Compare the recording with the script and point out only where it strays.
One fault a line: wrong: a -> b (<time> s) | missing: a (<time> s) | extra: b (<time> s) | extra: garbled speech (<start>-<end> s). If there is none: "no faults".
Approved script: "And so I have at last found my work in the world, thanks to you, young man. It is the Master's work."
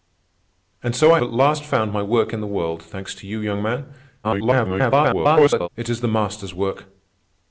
missing: have (1.2 s)
extra: garbled speech (4.2-5.7 s)